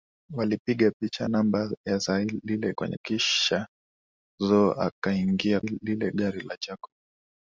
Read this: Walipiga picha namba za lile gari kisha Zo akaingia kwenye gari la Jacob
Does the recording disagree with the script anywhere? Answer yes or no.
yes